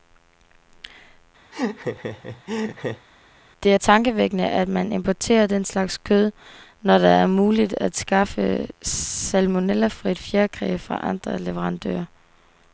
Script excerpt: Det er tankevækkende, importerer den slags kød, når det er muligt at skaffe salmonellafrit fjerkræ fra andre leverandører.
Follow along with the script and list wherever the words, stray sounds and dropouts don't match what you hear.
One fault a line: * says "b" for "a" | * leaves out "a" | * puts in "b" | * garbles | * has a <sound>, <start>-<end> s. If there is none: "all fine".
* has a laugh, 1.5-3.1 s
* puts in "at man"